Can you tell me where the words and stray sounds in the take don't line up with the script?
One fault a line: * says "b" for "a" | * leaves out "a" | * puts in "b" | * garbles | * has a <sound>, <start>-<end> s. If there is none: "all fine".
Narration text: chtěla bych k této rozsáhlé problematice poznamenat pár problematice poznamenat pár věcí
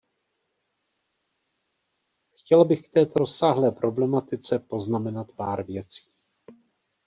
* leaves out "problematice poznamenat pár"